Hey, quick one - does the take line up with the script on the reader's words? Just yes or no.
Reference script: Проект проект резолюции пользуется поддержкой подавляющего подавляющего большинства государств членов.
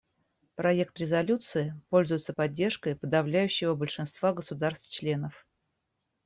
no